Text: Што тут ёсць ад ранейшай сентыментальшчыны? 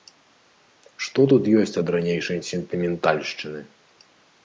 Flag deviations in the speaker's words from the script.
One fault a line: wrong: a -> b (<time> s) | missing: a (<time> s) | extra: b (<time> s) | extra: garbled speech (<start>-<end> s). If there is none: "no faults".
no faults